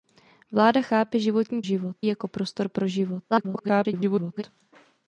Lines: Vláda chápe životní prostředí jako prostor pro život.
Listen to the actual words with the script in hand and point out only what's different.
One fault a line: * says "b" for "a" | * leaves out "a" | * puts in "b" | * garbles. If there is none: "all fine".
* says "život" for "prostředí"
* garbles